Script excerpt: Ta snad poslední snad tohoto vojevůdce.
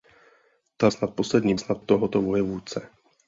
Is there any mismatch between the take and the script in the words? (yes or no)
no